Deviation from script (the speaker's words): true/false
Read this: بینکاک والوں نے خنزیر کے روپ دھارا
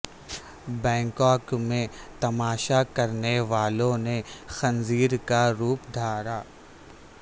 true